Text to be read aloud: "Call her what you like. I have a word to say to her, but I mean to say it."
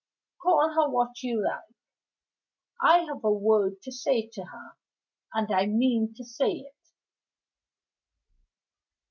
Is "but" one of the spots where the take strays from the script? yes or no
yes